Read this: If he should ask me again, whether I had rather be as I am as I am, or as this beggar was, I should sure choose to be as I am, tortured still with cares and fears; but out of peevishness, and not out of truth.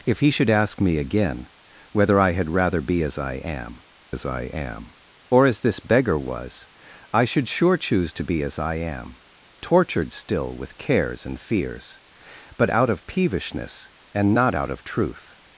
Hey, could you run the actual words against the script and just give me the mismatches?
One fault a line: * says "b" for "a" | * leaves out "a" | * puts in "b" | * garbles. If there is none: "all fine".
all fine